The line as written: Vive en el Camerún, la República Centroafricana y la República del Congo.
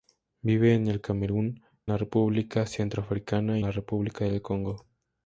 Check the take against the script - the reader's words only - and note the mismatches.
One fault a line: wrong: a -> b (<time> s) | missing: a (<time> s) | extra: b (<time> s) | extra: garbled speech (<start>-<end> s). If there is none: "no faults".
no faults